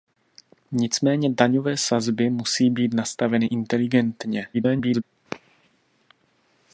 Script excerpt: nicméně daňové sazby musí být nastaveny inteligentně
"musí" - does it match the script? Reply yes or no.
yes